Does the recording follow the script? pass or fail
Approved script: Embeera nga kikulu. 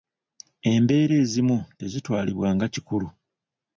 fail